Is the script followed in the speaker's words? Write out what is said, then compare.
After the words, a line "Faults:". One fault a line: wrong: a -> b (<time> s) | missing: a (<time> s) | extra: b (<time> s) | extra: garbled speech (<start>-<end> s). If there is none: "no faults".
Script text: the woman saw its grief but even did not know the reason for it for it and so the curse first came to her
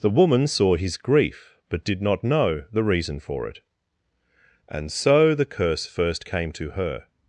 the woman saw his grief but did not know the reason for it and so the curse first came to her
Faults:
wrong: its -> his (0.8 s)
missing: even (1.9 s)
missing: for it (3.6 s)